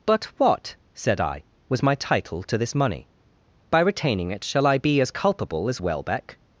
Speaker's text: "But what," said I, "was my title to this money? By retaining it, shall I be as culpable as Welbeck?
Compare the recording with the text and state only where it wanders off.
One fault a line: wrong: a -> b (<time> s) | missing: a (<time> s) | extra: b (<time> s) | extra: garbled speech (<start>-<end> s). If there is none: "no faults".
no faults